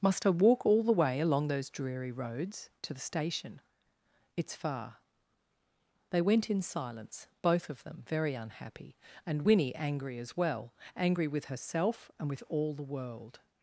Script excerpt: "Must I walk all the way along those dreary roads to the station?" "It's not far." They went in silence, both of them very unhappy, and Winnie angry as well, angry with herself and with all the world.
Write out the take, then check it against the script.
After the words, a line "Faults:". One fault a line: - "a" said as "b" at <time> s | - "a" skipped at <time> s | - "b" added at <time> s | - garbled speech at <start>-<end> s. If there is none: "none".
"Must I walk all the way along those dreary roads to the station?" "It's far." They went in silence, both of them very unhappy, and Winnie angry as well, angry with herself and with all the world.
Faults:
- "not" skipped at 4.5 s